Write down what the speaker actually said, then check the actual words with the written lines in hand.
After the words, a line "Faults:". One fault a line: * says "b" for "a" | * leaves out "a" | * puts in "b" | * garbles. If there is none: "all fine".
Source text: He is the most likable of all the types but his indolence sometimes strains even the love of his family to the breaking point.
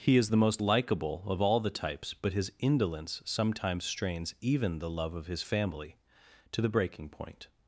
He is the most likable of all the types but his indolence sometimes strains even the love of his family to the breaking point.
Faults:
all fine